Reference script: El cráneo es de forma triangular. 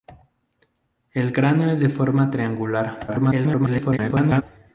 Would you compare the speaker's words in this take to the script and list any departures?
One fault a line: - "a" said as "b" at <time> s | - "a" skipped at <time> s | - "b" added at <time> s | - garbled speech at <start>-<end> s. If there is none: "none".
- garbled speech at 3.1-4.4 s